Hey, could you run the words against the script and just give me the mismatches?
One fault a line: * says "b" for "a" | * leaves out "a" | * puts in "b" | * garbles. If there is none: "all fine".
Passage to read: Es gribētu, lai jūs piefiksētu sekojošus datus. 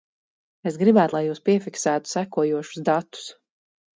all fine